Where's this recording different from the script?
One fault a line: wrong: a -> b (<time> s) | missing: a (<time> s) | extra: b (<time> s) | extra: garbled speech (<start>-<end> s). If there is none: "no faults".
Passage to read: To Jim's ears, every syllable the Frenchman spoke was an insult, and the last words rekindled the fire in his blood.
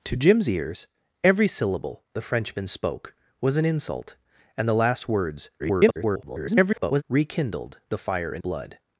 extra: garbled speech (5.6-7.0 s)
missing: his (8.4 s)